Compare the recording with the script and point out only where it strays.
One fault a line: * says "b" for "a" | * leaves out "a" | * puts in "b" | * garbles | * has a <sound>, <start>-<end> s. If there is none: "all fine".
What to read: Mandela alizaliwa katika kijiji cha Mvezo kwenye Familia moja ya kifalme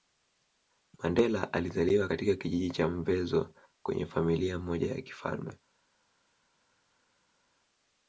all fine